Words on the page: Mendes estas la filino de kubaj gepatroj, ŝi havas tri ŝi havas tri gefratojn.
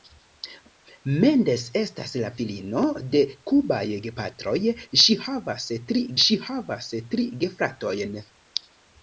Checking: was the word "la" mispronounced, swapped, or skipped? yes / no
no